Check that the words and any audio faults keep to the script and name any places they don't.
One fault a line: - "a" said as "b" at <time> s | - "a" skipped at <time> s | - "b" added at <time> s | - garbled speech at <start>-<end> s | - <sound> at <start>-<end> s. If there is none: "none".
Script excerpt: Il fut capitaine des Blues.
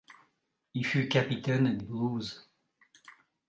- "des" skipped at 1.8 s